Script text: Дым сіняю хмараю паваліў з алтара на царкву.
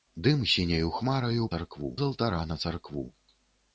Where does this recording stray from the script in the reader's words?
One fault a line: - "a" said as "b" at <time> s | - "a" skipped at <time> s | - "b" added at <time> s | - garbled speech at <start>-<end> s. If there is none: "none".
- "паваліў" said as "царкву" at 1.5 s